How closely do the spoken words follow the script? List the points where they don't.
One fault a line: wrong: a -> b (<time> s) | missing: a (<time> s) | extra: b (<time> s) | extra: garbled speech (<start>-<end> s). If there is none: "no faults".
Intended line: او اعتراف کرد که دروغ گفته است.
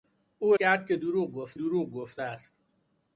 missing: اعتراف (0.6 s)
extra: دروغ گفته (1.5 s)